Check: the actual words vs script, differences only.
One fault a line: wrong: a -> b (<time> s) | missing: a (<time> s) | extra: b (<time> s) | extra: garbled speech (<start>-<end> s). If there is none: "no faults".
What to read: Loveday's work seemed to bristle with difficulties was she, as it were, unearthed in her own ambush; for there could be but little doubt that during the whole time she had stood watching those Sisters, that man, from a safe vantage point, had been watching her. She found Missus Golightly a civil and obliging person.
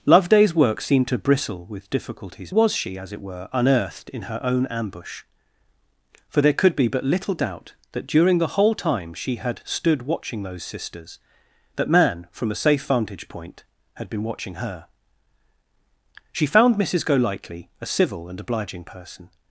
no faults